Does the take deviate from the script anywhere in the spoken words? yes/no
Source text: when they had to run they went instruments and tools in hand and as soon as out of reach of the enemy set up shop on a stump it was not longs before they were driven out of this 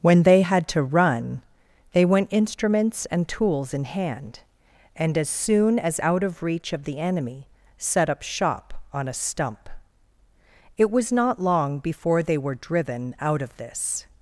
yes